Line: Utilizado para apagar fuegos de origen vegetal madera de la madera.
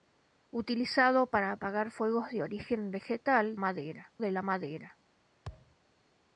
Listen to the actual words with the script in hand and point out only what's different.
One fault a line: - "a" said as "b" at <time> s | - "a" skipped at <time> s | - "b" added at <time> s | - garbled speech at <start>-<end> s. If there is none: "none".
none